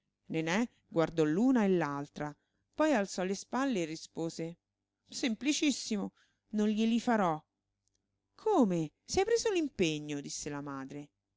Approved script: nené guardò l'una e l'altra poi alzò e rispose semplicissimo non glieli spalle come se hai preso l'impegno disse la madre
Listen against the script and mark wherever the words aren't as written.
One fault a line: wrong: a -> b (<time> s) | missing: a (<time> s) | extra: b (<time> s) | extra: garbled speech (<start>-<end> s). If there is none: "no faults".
extra: le spalle (3.2 s)
wrong: spalle -> farò (7.0 s)